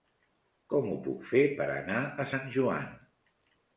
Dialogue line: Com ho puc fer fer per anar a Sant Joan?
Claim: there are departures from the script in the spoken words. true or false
true